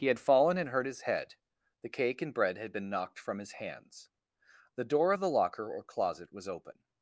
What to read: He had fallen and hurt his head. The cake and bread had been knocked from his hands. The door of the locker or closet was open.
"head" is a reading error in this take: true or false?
false